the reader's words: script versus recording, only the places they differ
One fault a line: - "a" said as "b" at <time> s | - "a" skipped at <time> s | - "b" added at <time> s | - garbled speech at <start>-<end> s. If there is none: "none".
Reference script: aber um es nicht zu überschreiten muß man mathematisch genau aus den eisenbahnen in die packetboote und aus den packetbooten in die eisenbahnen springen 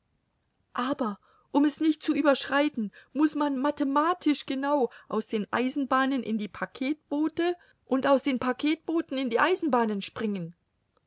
none